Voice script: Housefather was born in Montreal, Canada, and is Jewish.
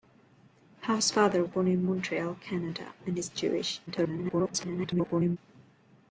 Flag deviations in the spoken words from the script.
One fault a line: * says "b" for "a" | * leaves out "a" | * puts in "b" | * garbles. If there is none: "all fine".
* leaves out "was"
* garbles